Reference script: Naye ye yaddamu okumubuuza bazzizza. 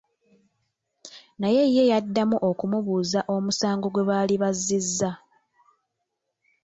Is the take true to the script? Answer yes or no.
no